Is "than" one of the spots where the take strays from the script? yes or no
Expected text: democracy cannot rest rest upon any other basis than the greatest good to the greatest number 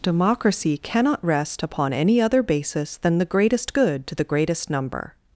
no